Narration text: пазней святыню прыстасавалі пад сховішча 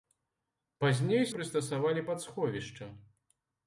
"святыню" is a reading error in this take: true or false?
true